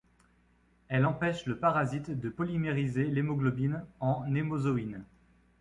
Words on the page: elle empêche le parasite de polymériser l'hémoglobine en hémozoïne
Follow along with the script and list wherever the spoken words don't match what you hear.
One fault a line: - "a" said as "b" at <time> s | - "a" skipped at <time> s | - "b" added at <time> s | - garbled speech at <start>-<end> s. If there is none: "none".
none